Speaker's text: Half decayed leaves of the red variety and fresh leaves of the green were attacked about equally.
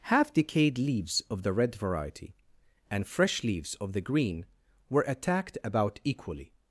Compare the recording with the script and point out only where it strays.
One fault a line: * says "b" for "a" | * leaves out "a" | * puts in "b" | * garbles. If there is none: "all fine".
all fine